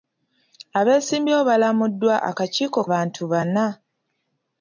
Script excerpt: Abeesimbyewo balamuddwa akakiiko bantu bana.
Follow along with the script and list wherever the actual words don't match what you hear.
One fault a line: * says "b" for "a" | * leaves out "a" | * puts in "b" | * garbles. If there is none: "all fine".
all fine